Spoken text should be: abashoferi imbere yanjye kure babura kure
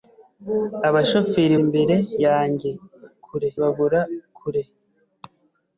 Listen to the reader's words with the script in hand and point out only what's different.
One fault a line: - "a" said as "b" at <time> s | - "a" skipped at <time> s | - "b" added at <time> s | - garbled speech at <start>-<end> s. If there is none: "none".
none